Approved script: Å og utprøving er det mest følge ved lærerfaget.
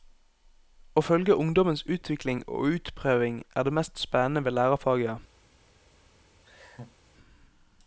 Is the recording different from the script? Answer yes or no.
yes